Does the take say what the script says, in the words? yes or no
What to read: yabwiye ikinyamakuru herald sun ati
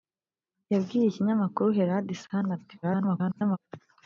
no